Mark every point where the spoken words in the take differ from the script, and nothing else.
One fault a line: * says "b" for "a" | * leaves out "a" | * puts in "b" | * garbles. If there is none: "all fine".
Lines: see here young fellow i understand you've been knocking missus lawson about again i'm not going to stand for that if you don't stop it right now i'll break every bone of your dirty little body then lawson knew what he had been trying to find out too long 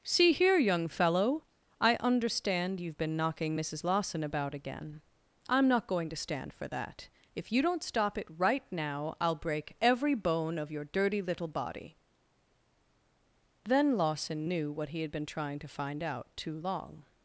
all fine